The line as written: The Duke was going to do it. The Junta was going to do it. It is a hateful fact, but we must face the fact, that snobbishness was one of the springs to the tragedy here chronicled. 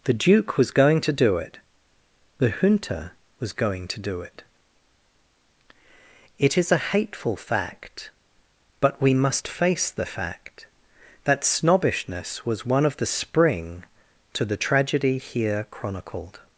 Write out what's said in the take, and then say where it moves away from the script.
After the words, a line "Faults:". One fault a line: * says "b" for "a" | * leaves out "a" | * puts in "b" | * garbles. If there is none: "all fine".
The Duke was going to do it. The Junta was going to do it. It is a hateful fact, but we must face the fact, that snobbishness was one of the spring to the tragedy here chronicled.
Faults:
* says "spring" for "springs"